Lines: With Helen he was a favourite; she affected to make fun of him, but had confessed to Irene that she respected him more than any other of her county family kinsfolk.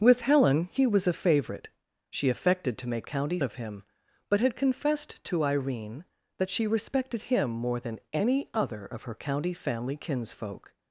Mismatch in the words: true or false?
true